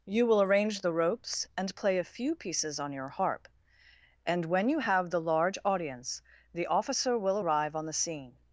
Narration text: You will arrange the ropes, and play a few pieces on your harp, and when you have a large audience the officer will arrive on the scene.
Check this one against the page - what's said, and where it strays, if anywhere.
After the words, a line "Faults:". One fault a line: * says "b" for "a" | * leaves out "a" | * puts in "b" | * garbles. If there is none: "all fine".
You will arrange the ropes, and play a few pieces on your harp, and when you have the large audience the officer will arrive on the scene.
Faults:
* says "the" for "a"